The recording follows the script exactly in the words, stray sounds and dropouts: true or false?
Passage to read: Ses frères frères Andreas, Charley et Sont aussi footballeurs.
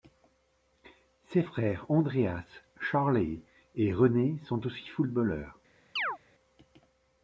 false